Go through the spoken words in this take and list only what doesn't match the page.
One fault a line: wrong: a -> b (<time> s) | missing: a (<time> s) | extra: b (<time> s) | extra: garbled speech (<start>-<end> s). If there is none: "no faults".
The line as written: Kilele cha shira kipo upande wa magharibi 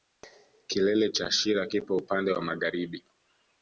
no faults